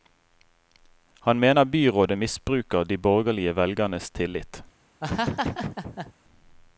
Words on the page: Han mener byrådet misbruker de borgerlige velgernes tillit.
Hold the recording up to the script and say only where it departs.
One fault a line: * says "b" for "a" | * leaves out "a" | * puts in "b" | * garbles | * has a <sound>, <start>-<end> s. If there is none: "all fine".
* has a laugh, 5.0-6.1 s